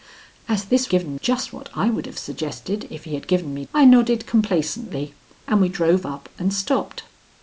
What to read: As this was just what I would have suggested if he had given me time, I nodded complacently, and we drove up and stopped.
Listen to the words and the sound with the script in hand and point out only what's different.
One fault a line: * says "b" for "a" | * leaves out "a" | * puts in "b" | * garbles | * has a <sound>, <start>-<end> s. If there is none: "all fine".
* says "given" for "was"
* leaves out "time"